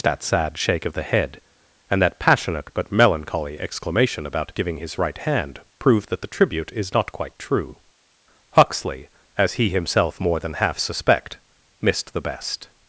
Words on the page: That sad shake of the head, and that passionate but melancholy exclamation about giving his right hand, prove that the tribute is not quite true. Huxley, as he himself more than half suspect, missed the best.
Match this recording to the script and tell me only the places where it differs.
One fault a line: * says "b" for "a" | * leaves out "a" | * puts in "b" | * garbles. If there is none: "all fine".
all fine